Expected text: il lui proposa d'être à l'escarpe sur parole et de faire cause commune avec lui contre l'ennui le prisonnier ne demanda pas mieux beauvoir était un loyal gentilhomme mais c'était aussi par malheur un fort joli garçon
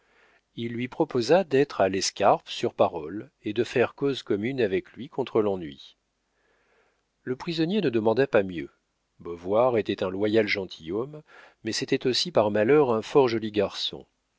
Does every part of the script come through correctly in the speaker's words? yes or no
yes